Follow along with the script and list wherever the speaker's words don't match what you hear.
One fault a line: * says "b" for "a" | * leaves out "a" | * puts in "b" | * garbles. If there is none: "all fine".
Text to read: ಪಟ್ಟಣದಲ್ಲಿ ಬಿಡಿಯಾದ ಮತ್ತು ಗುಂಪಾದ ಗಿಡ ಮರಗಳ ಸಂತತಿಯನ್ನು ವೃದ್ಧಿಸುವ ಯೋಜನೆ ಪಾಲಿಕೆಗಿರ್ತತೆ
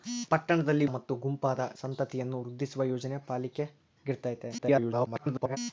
* leaves out "ಬಿಡಿಯಾದ"
* leaves out "ಗಿಡ ಮರಗಳ"
* garbles